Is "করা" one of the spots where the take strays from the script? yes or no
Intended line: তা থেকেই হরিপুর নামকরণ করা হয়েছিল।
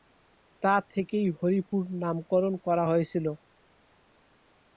no